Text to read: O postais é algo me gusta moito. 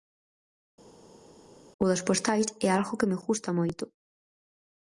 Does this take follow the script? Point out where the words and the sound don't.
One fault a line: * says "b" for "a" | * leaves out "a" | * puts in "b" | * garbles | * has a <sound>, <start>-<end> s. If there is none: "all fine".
* puts in "das"
* puts in "que"